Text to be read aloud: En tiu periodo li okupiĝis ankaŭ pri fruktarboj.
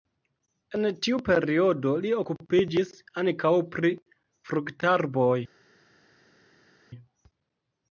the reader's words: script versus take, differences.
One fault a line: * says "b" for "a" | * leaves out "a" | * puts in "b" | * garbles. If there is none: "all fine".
all fine